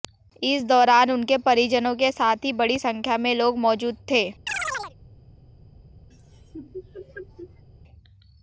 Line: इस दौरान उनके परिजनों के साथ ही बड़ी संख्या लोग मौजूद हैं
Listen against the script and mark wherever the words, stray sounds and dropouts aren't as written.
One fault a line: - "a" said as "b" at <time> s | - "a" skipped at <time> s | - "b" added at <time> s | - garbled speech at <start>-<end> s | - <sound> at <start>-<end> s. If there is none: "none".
- "में" added at 3.2 s
- "हैं" said as "थे" at 4.1 s
- chirp at 4.5-5.0 s
- laugh at 6.1-7.6 s